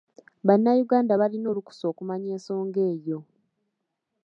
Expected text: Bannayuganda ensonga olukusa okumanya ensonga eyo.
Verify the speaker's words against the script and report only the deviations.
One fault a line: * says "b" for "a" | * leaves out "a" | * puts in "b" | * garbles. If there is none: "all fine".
* says "balina" for "ensonga"